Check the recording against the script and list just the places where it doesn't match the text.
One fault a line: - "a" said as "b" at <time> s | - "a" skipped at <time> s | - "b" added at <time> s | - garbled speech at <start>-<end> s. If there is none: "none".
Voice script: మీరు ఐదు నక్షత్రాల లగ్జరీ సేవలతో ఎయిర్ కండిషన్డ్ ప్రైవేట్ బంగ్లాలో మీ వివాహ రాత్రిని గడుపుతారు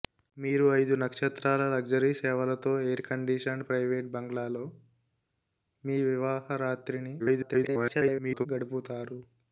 - garbled speech at 7.2-8.5 s